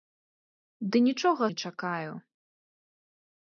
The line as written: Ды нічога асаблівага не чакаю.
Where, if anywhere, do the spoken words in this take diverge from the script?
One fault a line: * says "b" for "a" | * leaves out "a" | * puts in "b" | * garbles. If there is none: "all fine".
* leaves out "асаблівага"